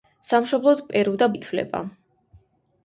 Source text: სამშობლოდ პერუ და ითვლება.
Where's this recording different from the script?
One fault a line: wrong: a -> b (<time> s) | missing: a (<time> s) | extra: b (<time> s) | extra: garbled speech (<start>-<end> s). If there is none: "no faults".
no faults